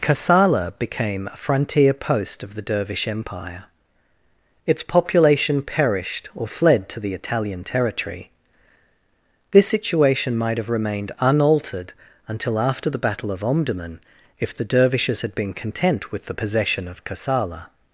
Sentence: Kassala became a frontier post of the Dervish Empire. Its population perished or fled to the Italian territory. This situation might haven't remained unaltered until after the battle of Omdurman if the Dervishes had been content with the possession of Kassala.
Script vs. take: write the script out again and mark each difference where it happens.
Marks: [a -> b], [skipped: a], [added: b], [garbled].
Kassala became a frontier post of the Dervish Empire. Its population perished or fled to the Italian territory. This situation might [haven't -> have] remained unaltered until after the battle of Omdurman if the Dervishes had been content with the possession of Kassala.